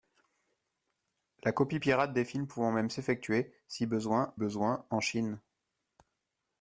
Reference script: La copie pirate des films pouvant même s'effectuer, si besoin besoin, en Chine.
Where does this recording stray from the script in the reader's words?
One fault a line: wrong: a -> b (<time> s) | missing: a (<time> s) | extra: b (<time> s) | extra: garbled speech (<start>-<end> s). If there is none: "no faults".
no faults